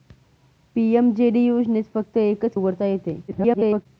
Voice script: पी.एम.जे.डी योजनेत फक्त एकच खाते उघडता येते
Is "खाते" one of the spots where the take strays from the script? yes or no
yes